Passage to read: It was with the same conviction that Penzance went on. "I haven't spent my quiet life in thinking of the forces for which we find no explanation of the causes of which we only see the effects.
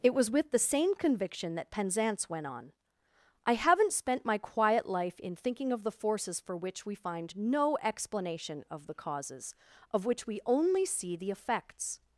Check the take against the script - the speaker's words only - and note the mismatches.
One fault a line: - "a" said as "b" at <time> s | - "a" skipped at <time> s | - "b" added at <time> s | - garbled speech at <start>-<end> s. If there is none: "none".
none